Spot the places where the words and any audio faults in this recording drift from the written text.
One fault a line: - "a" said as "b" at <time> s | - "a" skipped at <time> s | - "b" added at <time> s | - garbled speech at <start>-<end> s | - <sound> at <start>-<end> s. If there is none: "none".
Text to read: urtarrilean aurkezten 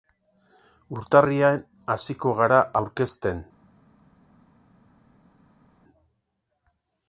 - "hasiko gara" added at 2.0 s